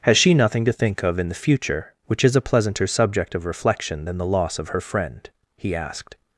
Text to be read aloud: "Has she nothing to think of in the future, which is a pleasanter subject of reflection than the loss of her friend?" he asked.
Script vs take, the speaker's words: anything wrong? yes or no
no